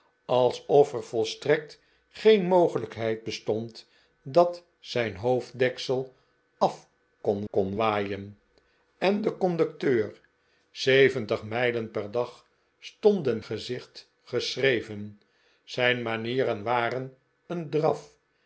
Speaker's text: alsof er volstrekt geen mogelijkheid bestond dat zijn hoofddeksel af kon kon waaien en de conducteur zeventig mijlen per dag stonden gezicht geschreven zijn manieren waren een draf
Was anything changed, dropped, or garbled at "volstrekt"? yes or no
no